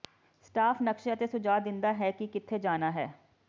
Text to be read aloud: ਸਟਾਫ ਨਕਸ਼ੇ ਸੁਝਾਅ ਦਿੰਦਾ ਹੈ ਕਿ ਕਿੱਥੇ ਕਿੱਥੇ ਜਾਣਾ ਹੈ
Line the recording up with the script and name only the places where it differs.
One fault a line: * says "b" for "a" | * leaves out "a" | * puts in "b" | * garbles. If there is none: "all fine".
* puts in "ਅਤੇ"
* leaves out "ਕਿੱਥੇ"